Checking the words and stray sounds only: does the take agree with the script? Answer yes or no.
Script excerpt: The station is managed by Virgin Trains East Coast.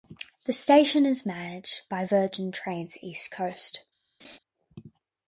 no